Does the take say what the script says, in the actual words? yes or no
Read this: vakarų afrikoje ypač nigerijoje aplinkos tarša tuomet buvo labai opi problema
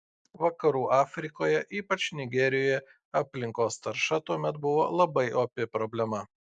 yes